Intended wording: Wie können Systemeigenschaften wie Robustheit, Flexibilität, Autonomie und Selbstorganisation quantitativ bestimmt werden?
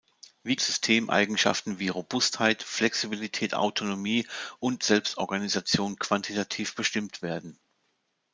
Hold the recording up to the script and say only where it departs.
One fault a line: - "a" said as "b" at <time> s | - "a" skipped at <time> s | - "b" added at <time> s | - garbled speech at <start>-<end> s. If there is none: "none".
- "können" skipped at 0.6 s